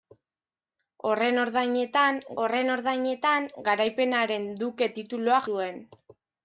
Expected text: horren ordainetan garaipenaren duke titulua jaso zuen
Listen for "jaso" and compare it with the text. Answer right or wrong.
wrong